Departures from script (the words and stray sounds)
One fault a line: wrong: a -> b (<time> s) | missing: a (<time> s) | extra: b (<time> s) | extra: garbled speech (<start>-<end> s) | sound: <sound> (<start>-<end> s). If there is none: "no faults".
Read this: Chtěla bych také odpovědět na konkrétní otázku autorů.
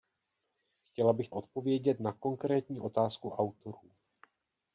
missing: také (1.3 s)